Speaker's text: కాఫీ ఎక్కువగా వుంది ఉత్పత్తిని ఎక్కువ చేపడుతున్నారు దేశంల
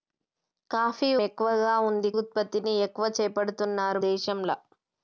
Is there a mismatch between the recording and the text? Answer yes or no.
no